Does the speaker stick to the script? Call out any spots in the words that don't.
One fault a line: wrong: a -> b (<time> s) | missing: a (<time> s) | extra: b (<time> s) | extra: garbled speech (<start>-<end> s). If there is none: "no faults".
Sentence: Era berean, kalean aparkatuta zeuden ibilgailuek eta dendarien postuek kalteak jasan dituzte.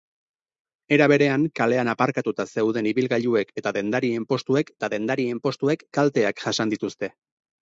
extra: eta dendarien postuek (4.8 s)